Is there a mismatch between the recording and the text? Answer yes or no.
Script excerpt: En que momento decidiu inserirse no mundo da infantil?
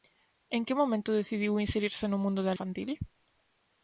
no